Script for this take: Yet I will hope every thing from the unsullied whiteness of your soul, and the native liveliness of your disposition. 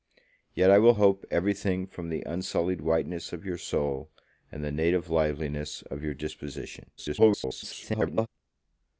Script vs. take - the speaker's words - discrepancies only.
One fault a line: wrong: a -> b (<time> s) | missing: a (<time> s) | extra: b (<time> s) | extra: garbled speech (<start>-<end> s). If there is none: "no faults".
extra: garbled speech (7.0-8.3 s)